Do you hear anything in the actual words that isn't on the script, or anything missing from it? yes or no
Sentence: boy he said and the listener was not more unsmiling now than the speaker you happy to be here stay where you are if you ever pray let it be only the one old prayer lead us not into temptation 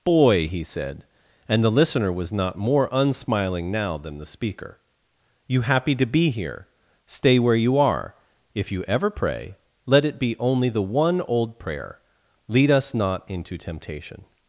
no